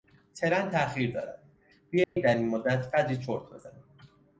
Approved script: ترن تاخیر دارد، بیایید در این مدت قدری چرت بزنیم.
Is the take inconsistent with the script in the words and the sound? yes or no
yes